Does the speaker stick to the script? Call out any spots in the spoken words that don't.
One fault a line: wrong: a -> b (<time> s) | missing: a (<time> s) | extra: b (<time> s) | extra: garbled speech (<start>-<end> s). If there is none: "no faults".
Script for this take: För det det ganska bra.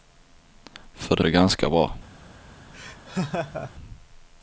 no faults